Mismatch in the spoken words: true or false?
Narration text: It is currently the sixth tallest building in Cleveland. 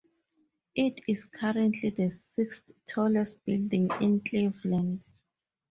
false